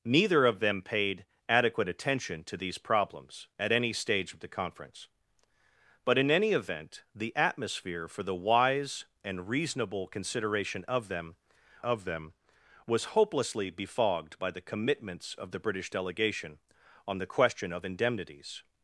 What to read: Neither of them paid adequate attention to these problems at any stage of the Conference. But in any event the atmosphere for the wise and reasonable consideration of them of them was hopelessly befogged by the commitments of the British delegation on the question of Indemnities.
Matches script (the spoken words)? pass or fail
pass